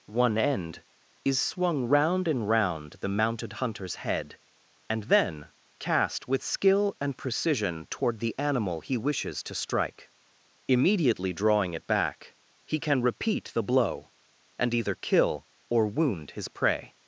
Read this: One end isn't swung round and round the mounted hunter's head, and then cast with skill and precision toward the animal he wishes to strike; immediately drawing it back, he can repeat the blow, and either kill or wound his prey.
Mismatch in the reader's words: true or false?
true